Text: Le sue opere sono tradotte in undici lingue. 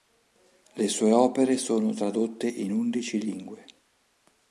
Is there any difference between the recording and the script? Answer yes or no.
no